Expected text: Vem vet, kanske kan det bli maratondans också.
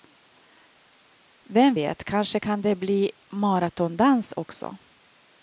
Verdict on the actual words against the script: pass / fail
pass